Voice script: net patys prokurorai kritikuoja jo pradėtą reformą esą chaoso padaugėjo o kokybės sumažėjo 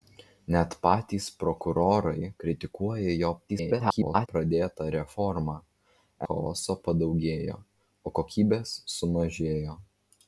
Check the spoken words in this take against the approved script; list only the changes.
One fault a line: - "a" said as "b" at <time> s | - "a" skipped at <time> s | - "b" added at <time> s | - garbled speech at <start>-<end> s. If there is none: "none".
- garbled speech at 3.5-4.3 s
- "esą" skipped at 5.6 s